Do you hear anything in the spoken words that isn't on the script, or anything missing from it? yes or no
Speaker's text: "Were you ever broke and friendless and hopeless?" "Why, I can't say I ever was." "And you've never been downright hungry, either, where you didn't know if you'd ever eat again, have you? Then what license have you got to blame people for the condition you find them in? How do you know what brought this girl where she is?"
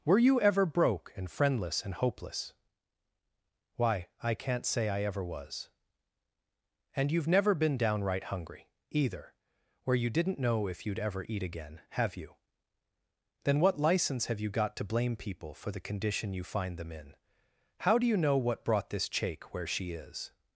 yes